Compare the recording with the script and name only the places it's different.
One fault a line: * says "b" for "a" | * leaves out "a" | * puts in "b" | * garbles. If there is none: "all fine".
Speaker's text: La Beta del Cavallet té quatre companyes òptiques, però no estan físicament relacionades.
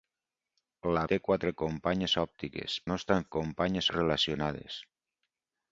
* leaves out "Beta del Cavallet"
* leaves out "però"
* says "companyes" for "físicament"